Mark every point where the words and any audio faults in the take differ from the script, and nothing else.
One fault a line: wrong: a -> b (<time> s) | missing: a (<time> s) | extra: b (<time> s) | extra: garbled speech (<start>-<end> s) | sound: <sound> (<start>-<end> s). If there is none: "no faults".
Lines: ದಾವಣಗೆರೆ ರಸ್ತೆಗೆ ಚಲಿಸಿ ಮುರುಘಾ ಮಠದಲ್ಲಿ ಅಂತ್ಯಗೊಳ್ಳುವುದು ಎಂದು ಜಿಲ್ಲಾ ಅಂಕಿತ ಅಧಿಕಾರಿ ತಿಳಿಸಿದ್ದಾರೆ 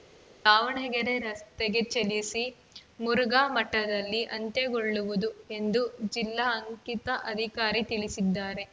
no faults